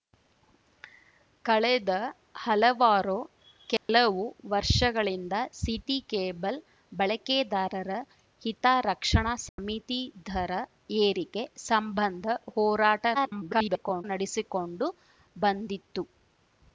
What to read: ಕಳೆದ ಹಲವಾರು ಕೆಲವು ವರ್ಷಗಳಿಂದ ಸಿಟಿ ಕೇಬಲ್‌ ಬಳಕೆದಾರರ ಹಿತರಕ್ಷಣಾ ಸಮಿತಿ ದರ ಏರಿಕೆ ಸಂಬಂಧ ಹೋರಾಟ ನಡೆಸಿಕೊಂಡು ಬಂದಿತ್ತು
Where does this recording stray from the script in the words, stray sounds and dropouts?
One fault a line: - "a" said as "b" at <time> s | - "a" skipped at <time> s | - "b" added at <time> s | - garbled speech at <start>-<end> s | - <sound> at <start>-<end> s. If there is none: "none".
- dropout at 3.8-3.9 s
- dropout at 9.5-9.6 s
- garbled speech at 13.1-14.0 s